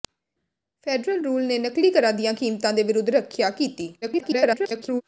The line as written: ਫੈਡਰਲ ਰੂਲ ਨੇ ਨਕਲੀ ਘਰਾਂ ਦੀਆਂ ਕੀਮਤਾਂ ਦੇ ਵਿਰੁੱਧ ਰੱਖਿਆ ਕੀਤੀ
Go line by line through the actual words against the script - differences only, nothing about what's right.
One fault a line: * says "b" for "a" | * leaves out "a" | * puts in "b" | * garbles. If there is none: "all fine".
* garbles